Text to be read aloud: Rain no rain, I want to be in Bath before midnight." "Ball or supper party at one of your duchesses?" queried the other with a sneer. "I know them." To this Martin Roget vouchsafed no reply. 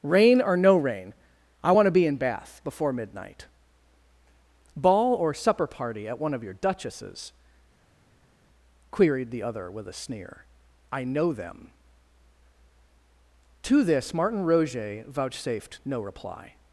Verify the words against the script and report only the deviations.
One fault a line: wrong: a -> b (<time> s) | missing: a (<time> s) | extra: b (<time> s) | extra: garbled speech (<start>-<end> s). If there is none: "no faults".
extra: or (0.4 s)